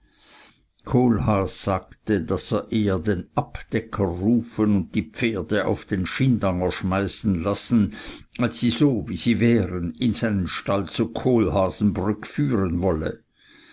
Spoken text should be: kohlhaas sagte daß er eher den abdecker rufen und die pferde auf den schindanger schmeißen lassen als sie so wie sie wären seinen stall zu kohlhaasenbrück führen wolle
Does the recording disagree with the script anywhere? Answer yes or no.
yes